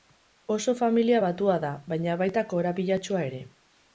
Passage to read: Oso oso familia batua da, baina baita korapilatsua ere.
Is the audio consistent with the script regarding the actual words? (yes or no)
no